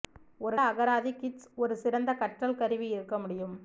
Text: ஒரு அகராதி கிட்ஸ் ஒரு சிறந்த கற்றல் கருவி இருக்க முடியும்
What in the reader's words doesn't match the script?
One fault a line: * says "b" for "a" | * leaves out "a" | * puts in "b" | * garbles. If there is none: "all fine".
all fine